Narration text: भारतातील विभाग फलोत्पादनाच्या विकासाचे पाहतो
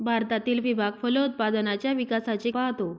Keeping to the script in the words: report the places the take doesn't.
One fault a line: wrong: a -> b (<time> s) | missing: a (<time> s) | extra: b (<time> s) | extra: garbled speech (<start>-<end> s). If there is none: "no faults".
no faults